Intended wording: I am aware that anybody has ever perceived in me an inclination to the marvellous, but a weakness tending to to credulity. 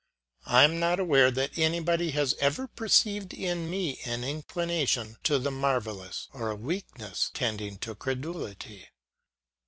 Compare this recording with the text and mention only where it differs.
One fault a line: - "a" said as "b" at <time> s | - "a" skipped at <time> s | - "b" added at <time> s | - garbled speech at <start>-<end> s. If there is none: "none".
- "not" added at 0.8 s
- "but" said as "or" at 6.3 s
- "to" skipped at 8.0 s